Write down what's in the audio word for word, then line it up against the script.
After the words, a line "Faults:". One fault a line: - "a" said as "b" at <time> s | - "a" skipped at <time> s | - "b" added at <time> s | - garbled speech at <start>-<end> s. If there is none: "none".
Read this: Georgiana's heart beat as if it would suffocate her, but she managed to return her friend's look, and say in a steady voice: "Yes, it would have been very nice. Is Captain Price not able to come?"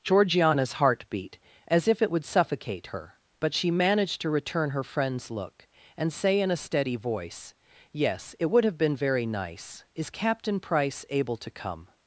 Georgiana's heart beat as if it would suffocate her, but she managed to return her friend's look, and say in a steady voice: "Yes, it would have been very nice. Is Captain Price able to come?"
Faults:
- "not" skipped at 11.0 s